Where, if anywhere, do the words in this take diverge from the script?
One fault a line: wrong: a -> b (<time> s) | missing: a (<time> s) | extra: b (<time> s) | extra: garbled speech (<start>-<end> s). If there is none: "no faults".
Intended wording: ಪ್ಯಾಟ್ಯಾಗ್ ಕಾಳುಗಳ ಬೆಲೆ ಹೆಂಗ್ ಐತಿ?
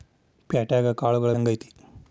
missing: ಬೆಲೆ (1.3 s)